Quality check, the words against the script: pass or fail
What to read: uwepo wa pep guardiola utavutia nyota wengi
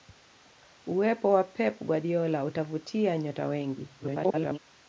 fail